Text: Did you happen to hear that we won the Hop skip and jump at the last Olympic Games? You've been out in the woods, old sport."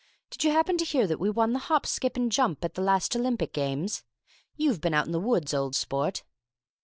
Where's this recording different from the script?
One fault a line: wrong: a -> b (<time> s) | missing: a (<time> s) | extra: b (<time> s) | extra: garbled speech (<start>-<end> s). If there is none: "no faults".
no faults